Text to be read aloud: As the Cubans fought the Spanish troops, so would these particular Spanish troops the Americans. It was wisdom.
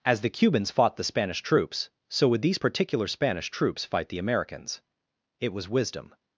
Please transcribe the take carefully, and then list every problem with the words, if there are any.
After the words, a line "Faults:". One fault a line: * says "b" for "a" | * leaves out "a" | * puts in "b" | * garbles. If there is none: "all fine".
As the Cubans fought the Spanish troops, so would these particular Spanish troops fight the Americans. It was wisdom.
Faults:
* puts in "fight"